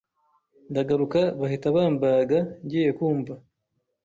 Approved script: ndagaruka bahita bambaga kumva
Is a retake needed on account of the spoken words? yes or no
yes